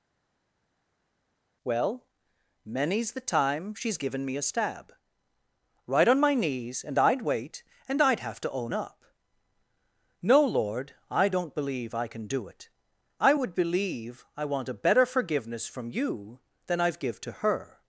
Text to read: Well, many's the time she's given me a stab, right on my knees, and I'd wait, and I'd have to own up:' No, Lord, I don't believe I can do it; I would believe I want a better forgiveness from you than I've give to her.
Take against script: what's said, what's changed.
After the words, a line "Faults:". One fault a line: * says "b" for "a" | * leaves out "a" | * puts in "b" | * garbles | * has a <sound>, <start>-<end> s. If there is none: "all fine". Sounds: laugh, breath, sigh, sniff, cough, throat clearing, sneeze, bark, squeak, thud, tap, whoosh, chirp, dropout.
Well, many's the time she's given me a stab, right on my knees, and I'd wait, and I'd have to own up:' No, Lord, I don't believe I can do it; I would believe I want a better forgiveness from you than I've give to her.
Faults:
all fine